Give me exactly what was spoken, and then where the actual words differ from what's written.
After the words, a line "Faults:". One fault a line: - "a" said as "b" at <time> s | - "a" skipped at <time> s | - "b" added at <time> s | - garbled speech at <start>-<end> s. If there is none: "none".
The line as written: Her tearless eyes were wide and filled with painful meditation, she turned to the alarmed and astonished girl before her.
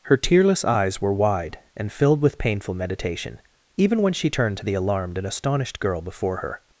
Her tearless eyes were wide and filled with painful meditation, even when she turned to the alarmed and astonished girl before her.
Faults:
- "even when" added at 3.8 s